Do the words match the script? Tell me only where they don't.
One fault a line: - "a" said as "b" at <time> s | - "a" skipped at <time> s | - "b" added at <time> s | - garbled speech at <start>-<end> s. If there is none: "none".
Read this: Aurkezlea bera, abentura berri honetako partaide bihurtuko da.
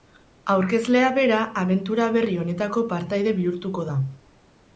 none